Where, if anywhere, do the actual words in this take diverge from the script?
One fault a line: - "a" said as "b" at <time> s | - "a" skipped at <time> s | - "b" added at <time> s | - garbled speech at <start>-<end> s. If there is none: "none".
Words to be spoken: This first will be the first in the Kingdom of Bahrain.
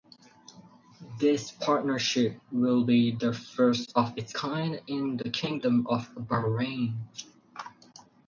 - "first" said as "partnership" at 1.5 s
- "of its kind" added at 4.0 s